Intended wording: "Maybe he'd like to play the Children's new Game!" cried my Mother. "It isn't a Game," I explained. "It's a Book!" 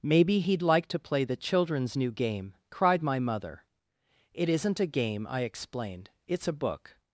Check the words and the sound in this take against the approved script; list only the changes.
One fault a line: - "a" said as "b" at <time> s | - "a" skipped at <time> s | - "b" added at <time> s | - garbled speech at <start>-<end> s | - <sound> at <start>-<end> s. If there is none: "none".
none